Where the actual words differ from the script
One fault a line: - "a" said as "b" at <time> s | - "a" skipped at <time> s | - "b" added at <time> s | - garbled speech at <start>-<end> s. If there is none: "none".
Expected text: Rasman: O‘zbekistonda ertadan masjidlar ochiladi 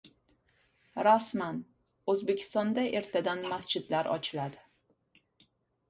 none